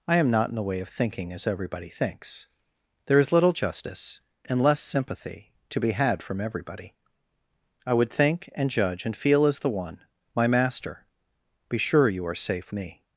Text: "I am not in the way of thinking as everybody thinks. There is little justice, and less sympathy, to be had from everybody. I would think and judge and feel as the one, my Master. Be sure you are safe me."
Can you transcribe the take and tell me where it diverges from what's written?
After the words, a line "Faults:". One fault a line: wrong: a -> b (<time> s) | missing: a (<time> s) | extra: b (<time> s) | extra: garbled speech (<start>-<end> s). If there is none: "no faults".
"I am not in the way of thinking as everybody thinks. There is little justice, and less sympathy, to be had from everybody. I would think and judge and feel as the one, my Master. Be sure you are safe me."
Faults:
no faults